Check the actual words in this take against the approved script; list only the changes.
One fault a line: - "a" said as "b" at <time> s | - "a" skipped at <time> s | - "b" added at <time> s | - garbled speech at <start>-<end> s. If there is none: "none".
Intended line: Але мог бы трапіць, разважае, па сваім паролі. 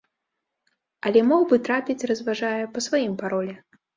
none